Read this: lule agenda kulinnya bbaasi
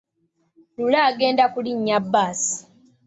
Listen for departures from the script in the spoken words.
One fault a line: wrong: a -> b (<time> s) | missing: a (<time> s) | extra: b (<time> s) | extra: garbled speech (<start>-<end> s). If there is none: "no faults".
no faults